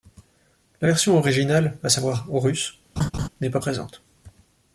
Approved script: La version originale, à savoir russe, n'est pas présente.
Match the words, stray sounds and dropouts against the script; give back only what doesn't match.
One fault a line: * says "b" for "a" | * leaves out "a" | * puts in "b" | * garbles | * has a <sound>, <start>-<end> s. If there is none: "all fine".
* has a laugh, 3.0-3.3 s